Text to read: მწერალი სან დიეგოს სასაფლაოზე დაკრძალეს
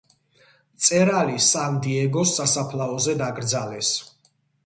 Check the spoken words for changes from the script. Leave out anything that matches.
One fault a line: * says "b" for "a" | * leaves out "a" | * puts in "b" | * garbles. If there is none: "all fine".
all fine